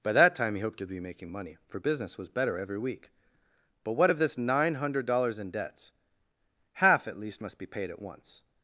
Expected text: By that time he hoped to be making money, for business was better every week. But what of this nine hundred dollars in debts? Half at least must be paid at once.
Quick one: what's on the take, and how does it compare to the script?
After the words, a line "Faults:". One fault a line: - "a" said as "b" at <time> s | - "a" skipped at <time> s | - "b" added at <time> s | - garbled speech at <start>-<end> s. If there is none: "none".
By that time he hoped to be making money, for business was better every week. But what of this nine hundred dollars in debts? Half at least must be paid at once.
Faults:
none